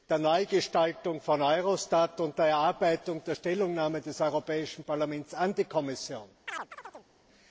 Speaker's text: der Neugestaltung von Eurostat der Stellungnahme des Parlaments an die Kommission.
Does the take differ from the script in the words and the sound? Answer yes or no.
yes